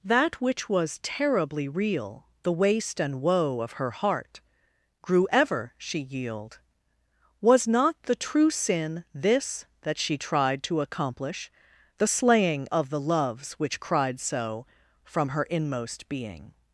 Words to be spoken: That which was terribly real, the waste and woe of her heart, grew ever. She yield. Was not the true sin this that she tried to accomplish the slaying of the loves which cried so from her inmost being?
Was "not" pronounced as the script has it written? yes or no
yes